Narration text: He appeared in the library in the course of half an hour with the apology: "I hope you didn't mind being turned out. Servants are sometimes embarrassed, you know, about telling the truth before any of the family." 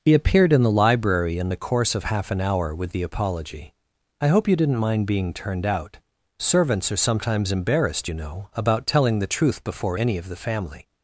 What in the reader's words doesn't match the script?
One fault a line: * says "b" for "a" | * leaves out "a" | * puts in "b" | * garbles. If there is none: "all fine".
all fine